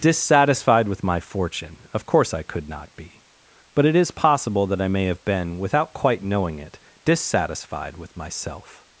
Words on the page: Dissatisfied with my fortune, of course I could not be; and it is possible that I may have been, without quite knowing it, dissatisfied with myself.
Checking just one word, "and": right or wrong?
wrong